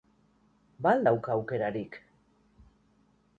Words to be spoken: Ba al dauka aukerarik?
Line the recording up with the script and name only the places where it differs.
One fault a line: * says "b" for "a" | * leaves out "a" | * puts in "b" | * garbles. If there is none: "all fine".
all fine